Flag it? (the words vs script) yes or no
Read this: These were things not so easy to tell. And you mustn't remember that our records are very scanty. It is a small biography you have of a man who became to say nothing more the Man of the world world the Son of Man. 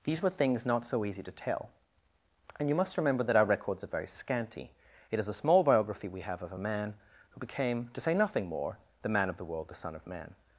yes